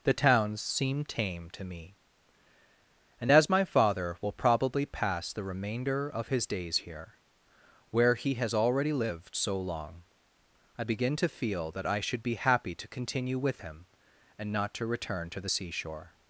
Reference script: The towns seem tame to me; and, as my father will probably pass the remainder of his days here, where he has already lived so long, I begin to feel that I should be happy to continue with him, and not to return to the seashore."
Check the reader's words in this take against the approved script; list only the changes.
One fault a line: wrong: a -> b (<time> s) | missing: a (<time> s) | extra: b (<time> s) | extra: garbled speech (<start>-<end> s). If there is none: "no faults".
no faults